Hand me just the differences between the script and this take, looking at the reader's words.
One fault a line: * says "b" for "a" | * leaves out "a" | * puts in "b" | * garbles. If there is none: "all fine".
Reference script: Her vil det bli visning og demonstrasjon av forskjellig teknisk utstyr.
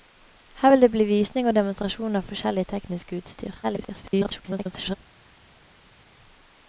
* garbles